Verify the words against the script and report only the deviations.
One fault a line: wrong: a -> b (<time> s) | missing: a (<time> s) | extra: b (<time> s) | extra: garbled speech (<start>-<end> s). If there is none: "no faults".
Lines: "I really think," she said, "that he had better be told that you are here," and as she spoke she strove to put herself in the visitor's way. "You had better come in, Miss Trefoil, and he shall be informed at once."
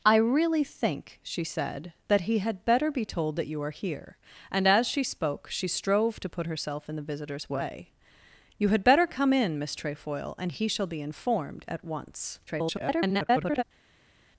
extra: garbled speech (12.5-13.6 s)